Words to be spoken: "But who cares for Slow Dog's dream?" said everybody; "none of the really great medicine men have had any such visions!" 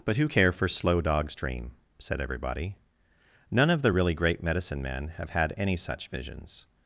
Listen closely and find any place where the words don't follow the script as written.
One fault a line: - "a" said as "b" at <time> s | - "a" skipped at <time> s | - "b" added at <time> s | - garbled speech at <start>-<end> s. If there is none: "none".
- "cares" said as "care" at 0.2 s